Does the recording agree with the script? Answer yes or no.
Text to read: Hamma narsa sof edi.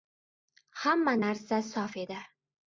yes